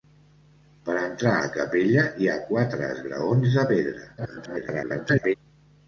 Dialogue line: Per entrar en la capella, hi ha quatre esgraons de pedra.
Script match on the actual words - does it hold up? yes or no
no